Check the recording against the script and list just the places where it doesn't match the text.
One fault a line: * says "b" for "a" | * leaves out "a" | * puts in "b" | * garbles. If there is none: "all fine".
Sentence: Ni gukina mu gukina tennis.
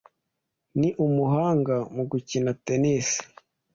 * says "umuhanga" for "gukina"